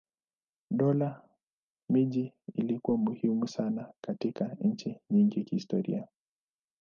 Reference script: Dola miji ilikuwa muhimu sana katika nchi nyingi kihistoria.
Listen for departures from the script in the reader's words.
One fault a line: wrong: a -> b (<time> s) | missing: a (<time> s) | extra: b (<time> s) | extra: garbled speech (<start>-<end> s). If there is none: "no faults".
no faults